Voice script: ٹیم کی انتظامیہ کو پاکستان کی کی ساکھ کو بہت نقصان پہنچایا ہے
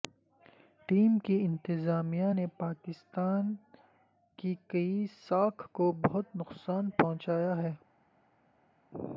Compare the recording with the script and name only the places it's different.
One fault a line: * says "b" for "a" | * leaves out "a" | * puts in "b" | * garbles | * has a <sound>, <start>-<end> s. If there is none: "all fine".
* says "نے" for "کو"